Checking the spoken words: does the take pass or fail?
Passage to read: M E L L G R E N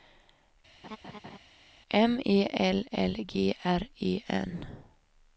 pass